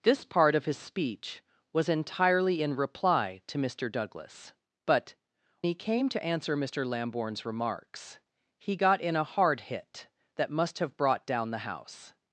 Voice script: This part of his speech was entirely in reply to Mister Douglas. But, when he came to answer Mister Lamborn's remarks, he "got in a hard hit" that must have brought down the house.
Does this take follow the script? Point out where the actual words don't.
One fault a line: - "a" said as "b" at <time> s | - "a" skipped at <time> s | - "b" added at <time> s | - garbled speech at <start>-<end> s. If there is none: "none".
- "when" skipped at 5.1 s